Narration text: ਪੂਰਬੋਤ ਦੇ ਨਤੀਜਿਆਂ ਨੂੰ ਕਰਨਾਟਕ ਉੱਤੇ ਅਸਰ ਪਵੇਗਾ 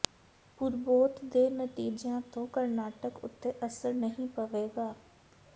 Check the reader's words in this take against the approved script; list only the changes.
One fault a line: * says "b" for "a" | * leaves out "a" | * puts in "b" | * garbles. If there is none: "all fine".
* says "ਤੋਂ" for "ਨੂੰ"
* puts in "ਨਹੀਂ"